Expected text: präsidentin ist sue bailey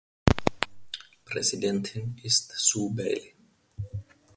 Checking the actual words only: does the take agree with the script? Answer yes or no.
yes